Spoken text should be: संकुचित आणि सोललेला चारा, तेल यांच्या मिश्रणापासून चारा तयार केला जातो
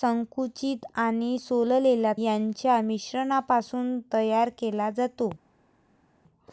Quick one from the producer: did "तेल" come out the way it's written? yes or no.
no